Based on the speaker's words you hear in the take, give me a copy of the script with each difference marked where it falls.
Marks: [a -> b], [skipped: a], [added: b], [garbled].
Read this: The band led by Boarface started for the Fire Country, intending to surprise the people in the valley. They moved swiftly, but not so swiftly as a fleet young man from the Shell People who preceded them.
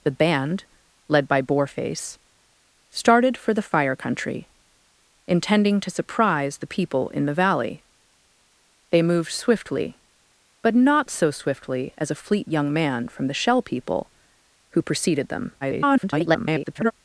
The band led by Boarface started for the Fire Country, intending to surprise the people in the valley. They moved swiftly, but not so swiftly as a fleet young man from the Shell People who preceded them. [garbled]